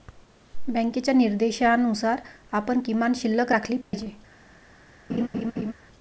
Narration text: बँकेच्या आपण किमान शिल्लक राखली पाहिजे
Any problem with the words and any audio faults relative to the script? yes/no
yes